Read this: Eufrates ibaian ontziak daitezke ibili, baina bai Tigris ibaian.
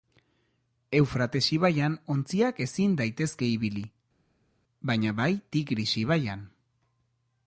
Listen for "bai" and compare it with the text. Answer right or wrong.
right